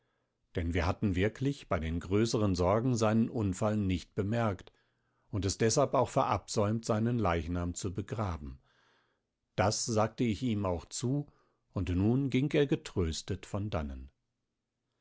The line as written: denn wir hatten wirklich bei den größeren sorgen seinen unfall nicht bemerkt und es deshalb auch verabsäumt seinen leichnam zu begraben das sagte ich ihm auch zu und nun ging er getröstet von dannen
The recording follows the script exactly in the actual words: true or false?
true